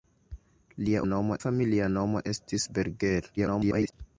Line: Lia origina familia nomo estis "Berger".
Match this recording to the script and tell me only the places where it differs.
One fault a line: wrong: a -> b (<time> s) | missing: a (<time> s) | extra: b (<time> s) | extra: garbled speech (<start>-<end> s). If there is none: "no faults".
wrong: origina -> nomo (1.1 s)
extra: garbled speech (3.4-3.9 s)